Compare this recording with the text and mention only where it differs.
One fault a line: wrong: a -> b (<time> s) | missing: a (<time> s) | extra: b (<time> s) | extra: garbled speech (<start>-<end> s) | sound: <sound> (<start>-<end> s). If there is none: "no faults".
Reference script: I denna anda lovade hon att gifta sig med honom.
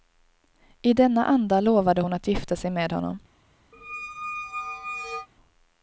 sound: squeak (3.7-5.3 s)